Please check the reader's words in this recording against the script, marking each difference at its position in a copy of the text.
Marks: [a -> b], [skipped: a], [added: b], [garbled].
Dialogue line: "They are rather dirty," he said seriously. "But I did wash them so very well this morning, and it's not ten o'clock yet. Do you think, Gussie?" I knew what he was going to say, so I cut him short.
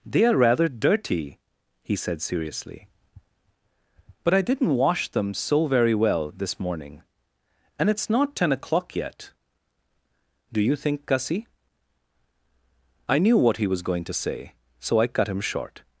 "They are rather dirty," he said seriously. "But I [did -> didn't] wash them so very well this morning, and it's not ten o'clock yet. Do you think, Gussie?" I knew what he was going to say, so I cut him short.